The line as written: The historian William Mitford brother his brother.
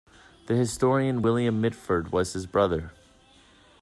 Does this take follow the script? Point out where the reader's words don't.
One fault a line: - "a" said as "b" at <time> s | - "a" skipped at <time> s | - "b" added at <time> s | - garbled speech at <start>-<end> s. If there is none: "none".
- "brother" said as "was" at 2.1 s